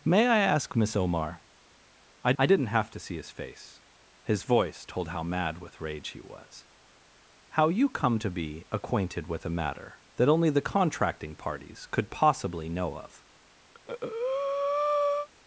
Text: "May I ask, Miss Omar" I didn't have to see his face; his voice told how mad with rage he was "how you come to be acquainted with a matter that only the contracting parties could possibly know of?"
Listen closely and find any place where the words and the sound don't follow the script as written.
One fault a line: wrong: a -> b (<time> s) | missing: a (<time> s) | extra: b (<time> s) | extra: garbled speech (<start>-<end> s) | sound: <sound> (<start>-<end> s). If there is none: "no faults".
extra: I (2.4 s)
sound: breath (13.7-15.3 s)